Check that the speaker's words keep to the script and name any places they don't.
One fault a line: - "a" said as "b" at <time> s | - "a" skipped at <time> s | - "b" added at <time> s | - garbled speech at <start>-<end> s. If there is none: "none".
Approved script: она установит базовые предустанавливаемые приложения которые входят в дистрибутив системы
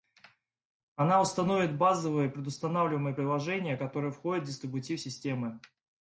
none